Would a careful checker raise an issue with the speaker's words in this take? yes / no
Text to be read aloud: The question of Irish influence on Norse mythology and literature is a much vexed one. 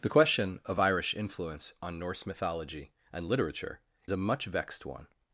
yes